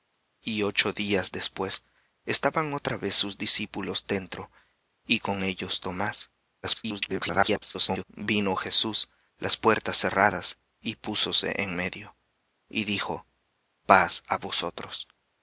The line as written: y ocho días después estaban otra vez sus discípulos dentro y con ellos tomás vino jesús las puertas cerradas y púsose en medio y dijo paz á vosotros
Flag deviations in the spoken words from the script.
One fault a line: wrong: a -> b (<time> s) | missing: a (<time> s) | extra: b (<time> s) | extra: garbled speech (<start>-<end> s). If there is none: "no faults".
extra: garbled speech (6.6-8.0 s)